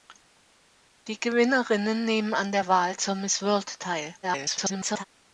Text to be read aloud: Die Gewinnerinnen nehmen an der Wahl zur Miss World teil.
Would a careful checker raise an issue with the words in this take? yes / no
yes